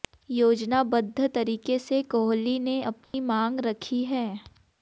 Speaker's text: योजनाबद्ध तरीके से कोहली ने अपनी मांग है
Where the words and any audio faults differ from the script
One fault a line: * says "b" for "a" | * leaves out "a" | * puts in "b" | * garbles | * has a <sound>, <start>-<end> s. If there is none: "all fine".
* has a dropout, 3.0-3.1 s
* puts in "रखी"